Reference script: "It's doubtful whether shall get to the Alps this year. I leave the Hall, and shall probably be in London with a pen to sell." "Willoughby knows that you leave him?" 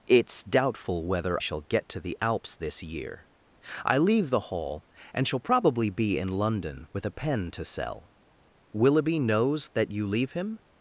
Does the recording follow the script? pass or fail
pass